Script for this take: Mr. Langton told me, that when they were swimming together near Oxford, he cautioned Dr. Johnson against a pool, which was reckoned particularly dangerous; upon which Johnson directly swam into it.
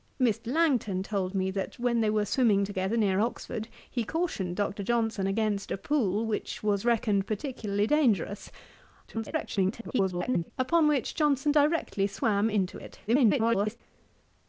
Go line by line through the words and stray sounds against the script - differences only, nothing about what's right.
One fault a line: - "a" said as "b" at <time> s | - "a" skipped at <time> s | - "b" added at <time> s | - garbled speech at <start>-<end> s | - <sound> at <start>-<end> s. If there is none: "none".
- garbled speech at 9.1-10.5 s
- garbled speech at 13.1-13.8 s